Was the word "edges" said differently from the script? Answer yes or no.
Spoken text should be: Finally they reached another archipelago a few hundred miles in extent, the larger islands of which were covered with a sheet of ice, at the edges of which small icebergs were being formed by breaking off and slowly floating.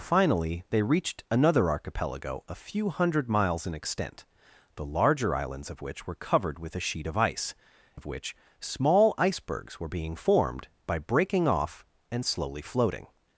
yes